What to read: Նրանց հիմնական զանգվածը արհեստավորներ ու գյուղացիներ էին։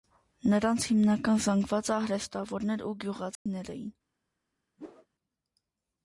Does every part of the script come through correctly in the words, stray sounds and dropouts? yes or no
no